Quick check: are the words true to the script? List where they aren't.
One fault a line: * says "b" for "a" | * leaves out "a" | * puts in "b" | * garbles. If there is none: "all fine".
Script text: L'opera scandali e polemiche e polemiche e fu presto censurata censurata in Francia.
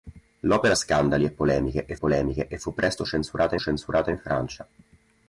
all fine